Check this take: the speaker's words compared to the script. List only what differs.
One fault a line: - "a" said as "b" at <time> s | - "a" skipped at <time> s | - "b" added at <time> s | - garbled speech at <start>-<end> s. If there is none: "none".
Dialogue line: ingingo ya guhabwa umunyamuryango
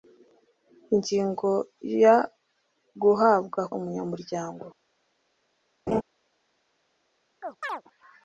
none